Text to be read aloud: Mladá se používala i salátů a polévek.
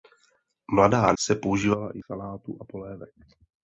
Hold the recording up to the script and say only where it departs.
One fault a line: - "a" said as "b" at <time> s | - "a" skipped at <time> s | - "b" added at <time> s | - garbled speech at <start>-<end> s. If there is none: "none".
none